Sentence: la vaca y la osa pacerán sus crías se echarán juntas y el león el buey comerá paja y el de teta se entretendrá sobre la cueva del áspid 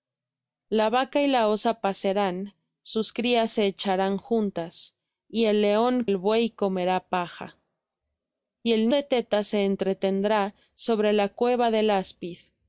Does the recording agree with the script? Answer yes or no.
yes